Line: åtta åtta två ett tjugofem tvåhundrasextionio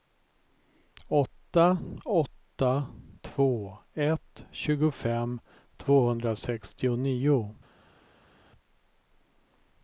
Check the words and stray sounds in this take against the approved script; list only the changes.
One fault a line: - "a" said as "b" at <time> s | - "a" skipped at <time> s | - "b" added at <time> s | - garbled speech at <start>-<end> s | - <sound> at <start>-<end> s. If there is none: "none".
none